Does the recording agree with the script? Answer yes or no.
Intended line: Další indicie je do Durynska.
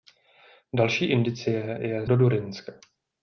yes